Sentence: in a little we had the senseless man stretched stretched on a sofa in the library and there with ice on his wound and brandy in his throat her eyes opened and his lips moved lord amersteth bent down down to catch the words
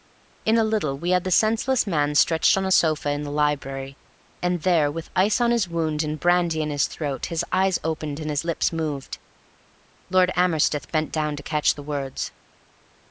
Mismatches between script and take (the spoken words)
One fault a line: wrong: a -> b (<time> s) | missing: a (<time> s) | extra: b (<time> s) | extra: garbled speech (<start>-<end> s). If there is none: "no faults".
missing: stretched (2.6 s)
wrong: her -> his (7.2 s)
missing: down (11.3 s)